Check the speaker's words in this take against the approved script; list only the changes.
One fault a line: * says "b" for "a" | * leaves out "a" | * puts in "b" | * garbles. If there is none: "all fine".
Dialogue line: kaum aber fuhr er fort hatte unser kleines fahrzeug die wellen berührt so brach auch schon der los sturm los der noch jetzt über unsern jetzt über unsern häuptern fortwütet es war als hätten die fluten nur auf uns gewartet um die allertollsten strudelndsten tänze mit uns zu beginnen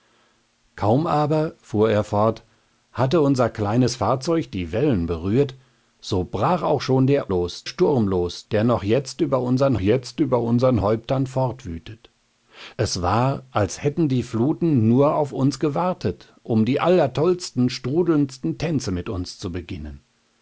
all fine